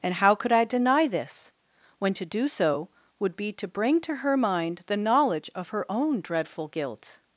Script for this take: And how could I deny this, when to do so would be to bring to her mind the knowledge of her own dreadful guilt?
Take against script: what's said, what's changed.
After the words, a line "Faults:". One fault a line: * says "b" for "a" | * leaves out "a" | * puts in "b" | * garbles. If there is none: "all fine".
And how could I deny this, when to do so would be to bring to her mind the knowledge of her own dreadful guilt?
Faults:
all fine